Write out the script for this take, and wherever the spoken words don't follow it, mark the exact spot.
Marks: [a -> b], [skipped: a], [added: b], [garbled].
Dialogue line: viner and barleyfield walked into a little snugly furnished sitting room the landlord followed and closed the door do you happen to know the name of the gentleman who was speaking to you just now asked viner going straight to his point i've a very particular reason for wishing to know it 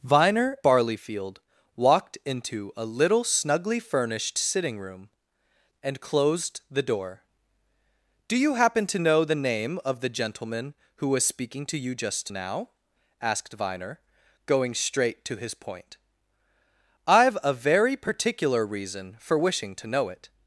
viner [skipped: and] barleyfield walked into a little snugly furnished sitting room [skipped: the landlord followed] and closed the door do you happen to know the name of the gentleman who was speaking to you just now asked viner going straight to his point i've a very particular reason for wishing to know it